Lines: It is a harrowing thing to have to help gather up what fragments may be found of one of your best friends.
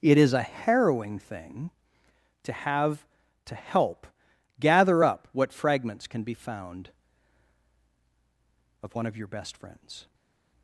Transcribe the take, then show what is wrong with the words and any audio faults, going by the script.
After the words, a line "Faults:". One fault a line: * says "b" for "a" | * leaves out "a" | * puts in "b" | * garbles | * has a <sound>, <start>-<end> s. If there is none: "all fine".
It is a harrowing thing to have to help gather up what fragments can be found of one of your best friends.
Faults:
* says "can" for "may"